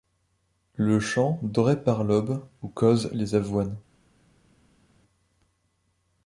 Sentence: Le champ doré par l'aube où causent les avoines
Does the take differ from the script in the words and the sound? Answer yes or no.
no